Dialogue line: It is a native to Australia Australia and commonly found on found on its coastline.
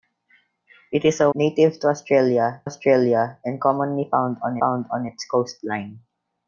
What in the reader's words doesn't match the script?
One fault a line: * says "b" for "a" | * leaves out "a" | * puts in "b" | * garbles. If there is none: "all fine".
all fine